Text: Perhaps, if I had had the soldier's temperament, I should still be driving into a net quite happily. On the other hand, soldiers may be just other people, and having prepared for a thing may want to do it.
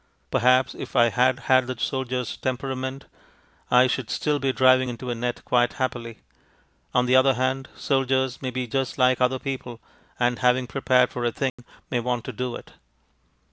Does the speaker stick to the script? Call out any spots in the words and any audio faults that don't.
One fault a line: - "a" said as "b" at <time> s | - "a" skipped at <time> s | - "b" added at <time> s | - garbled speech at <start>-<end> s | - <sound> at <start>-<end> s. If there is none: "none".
- "like" added at 9.0 s
- dropout at 11.5-11.6 s